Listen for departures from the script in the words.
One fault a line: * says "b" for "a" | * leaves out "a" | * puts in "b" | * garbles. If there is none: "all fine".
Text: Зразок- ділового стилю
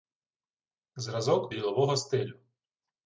all fine